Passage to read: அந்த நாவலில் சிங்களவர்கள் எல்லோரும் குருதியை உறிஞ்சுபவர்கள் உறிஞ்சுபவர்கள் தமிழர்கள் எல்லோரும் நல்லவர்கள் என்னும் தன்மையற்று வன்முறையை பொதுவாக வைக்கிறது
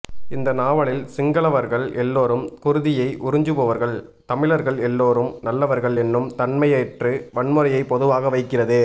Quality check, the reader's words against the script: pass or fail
fail